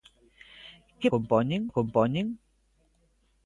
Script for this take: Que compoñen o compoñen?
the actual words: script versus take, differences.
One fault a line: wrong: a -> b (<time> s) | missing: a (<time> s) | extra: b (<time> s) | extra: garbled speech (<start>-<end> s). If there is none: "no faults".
no faults